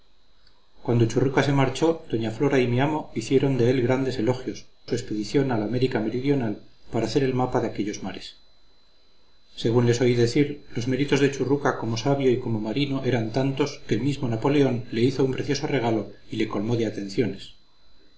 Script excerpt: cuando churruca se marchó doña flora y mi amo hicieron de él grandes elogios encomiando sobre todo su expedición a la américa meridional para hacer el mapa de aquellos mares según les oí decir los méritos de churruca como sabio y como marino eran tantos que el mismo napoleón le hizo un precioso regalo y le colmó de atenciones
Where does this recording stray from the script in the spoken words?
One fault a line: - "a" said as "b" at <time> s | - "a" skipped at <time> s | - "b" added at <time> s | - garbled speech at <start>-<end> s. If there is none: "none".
- "encomiando sobre todo" skipped at 4.7 s